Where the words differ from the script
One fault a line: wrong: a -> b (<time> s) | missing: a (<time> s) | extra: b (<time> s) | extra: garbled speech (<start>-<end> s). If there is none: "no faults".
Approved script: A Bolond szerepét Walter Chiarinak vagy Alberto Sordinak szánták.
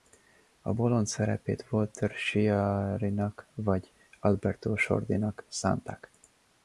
no faults